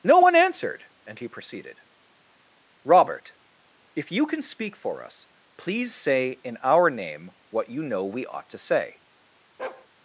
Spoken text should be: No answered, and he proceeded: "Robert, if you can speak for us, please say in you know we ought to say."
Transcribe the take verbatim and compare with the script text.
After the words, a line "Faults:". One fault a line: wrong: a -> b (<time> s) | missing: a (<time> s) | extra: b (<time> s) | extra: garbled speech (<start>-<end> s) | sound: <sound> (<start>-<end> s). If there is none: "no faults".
No one answered, and he proceeded: "Robert, if you can speak for us, please say in our name what you know we ought to say."
Faults:
extra: one (0.2 s)
extra: our name what (6.6 s)
sound: bark (9.6-9.9 s)